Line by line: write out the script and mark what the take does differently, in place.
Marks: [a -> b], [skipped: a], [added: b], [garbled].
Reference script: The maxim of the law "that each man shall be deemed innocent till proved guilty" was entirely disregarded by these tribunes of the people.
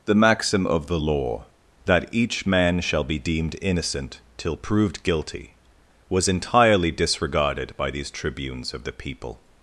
The maxim of the law "that each man shall be deemed innocent till proved guilty" was entirely disregarded by these tribunes of the people.